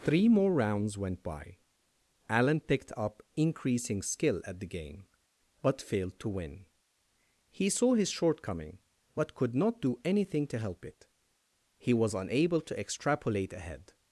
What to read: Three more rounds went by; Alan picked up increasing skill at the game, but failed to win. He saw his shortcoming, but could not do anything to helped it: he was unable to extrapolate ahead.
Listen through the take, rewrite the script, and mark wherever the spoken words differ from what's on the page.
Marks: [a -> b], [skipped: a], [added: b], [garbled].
Three more rounds went by; Alan picked up increasing skill at the game, but failed to win. He saw his shortcoming, but could not do anything to [helped -> help] it: he was unable to extrapolate ahead.